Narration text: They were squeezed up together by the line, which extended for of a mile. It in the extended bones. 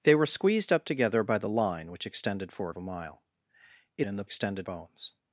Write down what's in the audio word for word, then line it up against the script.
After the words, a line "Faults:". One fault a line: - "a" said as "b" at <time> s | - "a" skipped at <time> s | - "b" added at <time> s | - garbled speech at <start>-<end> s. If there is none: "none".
They were squeezed up together by the line, which extended for of a mile. It in the extended bones.
Faults:
none